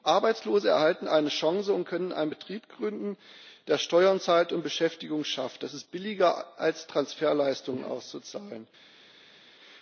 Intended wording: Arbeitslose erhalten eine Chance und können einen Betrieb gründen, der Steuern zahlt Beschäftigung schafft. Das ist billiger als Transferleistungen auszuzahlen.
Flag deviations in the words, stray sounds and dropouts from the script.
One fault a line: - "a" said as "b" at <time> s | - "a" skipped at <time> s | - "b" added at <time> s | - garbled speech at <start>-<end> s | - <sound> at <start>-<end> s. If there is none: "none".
- "und" added at 4.5 s